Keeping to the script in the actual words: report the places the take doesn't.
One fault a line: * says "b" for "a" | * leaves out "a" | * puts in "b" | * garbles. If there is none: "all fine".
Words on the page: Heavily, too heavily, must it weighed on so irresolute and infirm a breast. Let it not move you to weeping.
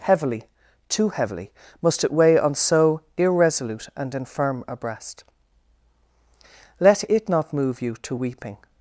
* says "weigh" for "weighed"